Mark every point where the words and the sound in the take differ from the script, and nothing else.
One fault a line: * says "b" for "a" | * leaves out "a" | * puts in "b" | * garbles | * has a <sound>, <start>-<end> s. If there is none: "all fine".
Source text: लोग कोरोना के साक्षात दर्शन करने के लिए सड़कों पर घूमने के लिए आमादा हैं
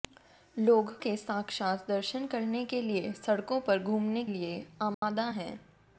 * leaves out "कोरोना"
* leaves out "के"
* has a dropout, 4.9-5.0 s